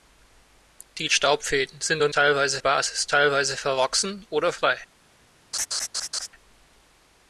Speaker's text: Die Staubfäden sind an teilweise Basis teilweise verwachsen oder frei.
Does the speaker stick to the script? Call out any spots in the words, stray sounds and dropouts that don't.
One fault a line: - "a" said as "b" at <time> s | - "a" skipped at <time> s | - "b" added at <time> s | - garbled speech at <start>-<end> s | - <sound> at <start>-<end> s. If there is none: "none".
- laugh at 5.5-6.3 s